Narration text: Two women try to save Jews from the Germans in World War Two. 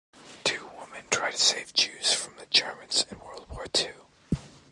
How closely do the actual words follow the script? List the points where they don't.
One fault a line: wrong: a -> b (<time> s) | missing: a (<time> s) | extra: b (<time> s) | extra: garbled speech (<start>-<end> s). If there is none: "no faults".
no faults